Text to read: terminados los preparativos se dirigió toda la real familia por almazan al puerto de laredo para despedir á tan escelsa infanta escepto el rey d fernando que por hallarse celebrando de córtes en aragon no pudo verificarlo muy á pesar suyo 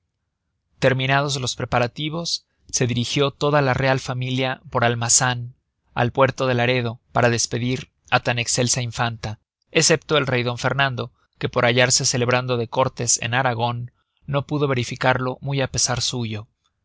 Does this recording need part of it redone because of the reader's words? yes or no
no